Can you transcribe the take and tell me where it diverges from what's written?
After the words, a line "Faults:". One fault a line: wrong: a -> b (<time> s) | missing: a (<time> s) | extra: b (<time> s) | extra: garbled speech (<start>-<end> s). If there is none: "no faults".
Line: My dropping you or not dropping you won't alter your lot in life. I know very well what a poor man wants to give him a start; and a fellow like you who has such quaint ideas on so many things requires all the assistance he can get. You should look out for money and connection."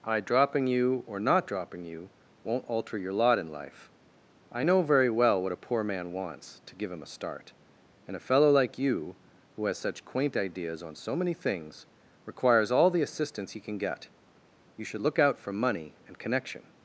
I dropping you or not dropping you won't alter your lot in life. I know very well what a poor man wants to give him a start; and a fellow like you who has such quaint ideas on so many things requires all the assistance he can get. You should look out for money and connection."
Faults:
wrong: My -> I (0.0 s)